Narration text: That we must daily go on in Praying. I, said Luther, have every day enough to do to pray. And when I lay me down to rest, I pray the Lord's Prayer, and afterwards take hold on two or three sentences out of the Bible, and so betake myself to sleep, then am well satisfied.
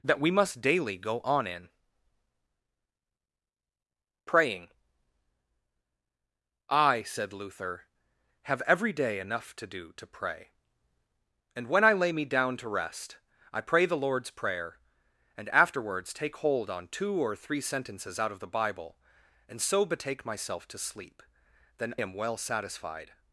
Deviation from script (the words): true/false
false